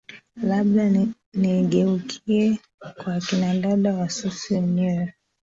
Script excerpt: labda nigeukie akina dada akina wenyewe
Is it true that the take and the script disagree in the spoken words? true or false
true